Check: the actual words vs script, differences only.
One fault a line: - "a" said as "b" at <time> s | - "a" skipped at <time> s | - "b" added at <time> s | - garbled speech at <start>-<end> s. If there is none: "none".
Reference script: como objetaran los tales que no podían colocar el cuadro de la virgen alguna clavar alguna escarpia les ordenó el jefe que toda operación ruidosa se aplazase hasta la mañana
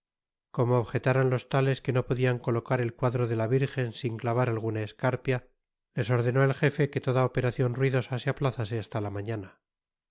- "alguna" said as "sin" at 3.9 s